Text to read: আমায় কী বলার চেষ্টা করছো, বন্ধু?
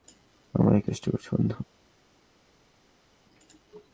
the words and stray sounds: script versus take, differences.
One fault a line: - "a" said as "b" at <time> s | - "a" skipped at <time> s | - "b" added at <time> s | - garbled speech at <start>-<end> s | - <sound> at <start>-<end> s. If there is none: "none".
- "বলার" skipped at 0.9 s